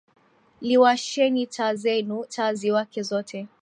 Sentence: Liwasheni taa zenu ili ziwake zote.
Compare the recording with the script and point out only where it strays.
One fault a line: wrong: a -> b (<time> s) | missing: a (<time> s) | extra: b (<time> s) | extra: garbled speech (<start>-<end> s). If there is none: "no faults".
wrong: ili -> taa (2.3 s)